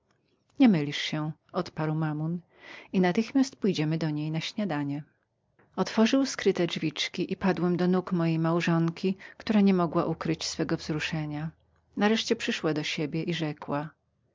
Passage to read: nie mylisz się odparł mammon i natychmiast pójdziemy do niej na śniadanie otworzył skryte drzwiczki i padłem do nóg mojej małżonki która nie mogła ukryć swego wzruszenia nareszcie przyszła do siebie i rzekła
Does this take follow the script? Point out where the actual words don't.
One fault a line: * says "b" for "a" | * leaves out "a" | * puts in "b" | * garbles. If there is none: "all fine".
all fine